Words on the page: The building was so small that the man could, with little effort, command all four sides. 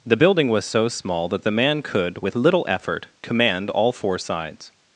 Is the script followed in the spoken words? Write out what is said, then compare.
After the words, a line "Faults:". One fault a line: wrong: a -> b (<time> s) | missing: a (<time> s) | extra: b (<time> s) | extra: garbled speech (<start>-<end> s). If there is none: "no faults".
The building was so small that the man could, with little effort, command all four sides.
Faults:
no faults